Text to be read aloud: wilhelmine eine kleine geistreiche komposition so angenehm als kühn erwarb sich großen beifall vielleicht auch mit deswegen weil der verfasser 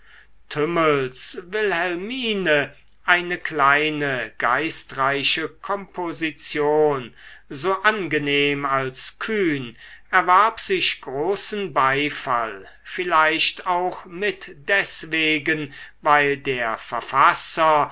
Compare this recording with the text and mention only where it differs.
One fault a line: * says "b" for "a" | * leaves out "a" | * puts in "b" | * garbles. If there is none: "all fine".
all fine